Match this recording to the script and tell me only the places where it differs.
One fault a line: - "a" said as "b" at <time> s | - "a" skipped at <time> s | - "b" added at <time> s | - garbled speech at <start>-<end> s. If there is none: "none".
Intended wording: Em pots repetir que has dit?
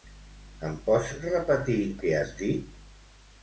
none